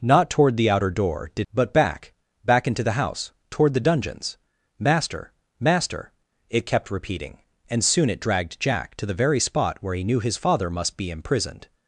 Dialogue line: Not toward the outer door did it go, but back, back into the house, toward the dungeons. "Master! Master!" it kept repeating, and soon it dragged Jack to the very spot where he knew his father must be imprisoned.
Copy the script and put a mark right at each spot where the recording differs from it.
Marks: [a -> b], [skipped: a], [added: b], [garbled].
Not toward the outer door did [skipped: it go,] but back, back into the house, toward the dungeons. "Master! Master!" it kept repeating, and soon it dragged Jack to the very spot where he knew his father must be imprisoned.